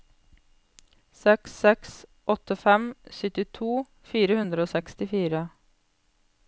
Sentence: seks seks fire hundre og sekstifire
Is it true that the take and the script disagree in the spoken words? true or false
true